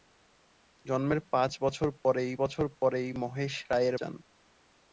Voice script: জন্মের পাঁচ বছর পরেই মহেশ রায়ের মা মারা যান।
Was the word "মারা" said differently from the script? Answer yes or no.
yes